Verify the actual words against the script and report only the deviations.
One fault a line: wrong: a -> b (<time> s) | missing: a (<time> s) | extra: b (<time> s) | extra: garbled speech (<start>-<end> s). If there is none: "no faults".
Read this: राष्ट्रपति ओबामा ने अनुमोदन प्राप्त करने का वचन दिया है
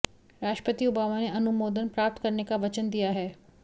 no faults